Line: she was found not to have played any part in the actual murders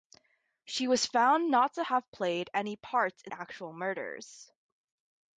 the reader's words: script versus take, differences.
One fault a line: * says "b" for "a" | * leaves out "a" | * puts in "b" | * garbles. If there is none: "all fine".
* leaves out "the"